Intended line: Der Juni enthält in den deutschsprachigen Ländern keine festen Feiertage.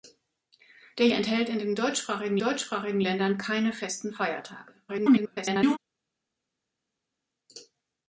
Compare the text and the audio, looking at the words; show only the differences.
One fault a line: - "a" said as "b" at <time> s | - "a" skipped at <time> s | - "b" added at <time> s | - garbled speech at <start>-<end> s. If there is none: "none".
- "Juni" skipped at 1.1 s
- "deutschsprachigen" added at 2.4 s
- garbled speech at 4.9-5.8 s